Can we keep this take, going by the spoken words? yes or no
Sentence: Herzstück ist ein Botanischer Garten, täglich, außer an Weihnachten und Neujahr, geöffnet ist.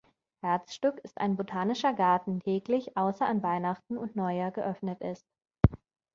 yes